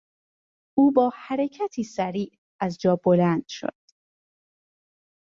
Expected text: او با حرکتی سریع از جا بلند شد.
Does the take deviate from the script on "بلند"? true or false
false